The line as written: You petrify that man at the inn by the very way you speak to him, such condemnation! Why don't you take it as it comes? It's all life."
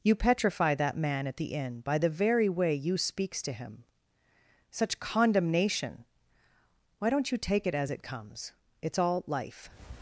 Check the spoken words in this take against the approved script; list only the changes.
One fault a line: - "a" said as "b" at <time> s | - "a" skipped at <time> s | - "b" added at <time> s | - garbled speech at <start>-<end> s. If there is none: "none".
- "speak" said as "speaks" at 3.0 s